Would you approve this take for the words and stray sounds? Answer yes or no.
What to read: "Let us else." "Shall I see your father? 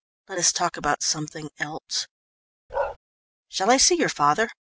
no